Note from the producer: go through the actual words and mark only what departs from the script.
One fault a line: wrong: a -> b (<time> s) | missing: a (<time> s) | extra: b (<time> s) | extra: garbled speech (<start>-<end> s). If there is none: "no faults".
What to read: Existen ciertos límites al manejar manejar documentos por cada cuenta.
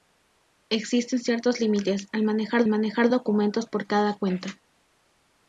no faults